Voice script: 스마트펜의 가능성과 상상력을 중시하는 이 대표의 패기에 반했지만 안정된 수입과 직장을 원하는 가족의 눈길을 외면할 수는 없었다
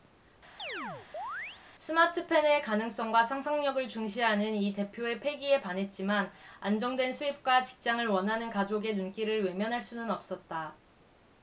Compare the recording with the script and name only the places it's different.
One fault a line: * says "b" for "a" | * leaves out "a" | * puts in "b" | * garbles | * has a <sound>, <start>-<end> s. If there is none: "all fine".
* has a chirp, 0.6-1.6 s